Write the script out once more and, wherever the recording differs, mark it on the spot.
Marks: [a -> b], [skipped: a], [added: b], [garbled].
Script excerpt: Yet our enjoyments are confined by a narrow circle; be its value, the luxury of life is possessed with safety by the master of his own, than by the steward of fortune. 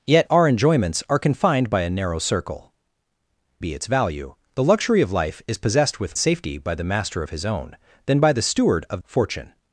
Yet our enjoyments are confined by a narrow circle; be its value, the luxury of life is possessed with safety by the master of his own, than by the steward of fortune.